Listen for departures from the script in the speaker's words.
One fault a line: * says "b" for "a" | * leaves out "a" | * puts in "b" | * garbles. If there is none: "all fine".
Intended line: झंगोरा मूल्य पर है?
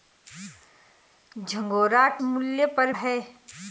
all fine